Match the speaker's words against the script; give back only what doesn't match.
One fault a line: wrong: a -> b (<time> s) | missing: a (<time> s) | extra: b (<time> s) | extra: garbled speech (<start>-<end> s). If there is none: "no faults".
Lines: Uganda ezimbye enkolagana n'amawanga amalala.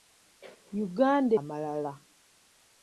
missing: ezimbye enkolagana n'amawanga (1.3 s)